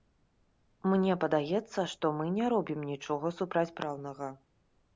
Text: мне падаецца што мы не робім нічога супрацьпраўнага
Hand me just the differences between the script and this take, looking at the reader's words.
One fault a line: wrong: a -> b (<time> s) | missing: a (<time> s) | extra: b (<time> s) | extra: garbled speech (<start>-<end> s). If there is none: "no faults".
no faults